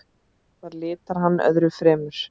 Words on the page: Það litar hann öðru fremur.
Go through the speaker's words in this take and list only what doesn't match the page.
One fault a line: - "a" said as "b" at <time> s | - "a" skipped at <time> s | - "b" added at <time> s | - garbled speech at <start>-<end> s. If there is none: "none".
none